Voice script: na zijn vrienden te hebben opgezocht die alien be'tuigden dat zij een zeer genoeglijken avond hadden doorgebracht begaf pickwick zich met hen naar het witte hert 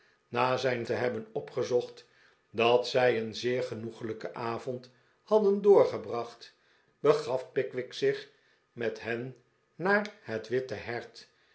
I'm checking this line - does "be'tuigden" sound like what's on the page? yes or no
no